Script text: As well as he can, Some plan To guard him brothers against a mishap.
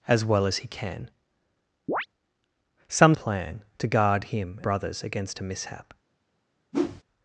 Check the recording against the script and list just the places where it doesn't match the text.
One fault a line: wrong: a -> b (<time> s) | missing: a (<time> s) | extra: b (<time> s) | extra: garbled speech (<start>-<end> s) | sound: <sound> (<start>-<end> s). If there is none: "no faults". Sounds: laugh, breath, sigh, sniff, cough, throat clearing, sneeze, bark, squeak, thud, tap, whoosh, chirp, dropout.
sound: chirp (1.9-2.1 s)
sound: whoosh (6.7-7.0 s)